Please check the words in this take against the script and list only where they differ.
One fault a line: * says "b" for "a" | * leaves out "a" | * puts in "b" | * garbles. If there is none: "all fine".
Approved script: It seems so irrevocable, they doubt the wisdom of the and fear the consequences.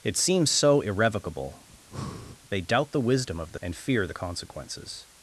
all fine